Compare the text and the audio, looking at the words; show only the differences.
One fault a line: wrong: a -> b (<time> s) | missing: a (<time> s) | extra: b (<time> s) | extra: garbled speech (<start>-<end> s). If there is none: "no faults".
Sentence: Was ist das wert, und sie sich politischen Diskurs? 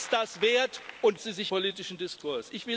no faults